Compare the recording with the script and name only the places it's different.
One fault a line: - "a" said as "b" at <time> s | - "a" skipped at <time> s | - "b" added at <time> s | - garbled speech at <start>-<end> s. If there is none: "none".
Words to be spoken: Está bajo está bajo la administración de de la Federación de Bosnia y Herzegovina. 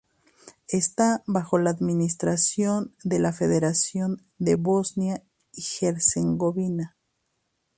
- "está bajo" skipped at 1.6 s
- "de" skipped at 3.2 s